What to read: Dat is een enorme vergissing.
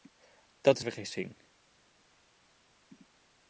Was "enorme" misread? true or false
true